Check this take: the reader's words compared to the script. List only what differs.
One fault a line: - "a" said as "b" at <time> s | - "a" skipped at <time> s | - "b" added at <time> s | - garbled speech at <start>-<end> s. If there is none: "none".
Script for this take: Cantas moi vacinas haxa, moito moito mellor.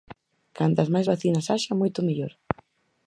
- "moi" said as "máis" at 0.9 s
- "moito" skipped at 2.0 s